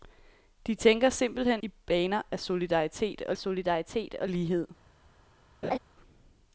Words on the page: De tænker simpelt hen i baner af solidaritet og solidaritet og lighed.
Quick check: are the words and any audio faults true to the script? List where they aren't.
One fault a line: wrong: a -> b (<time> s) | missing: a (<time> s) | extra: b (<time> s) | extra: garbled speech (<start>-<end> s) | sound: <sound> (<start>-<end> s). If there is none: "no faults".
sound: laugh (5.6-5.8 s)